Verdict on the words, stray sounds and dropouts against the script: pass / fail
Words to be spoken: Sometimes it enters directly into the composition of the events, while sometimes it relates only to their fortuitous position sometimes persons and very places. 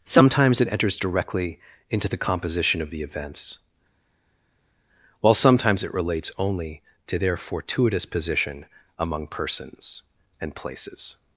fail